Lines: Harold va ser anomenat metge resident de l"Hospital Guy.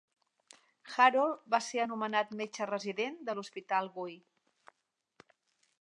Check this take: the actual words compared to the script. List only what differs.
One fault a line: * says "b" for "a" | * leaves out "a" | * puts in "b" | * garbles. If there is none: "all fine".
all fine